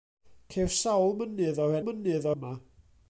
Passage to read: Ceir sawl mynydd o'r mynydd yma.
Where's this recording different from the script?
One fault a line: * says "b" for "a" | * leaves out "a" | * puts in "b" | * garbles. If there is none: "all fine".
all fine